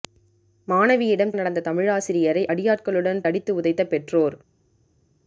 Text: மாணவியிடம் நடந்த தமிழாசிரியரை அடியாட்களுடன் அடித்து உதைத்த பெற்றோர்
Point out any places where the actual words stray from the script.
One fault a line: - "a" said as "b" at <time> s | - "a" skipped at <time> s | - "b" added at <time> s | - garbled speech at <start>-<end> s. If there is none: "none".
none